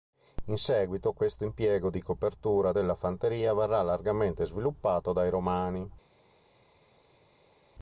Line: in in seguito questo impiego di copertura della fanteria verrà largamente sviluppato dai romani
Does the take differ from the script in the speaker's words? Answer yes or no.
yes